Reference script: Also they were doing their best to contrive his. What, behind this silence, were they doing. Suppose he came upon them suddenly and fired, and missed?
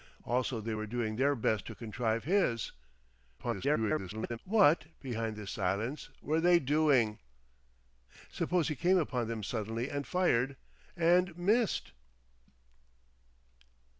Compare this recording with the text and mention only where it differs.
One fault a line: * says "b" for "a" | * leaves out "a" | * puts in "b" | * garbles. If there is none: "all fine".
* garbles